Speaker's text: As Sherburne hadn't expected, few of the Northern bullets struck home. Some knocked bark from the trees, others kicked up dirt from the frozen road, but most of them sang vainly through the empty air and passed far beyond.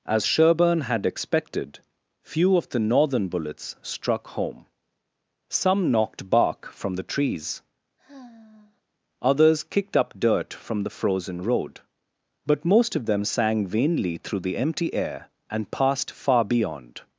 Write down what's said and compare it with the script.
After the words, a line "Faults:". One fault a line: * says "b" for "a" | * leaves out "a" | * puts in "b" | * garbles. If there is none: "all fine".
As Sherburne had expected, few of the Northern bullets struck home. Some knocked bark from the trees, others kicked up dirt from the frozen road, but most of them sang vainly through the empty air and passed far beyond.
Faults:
* says "had" for "hadn't"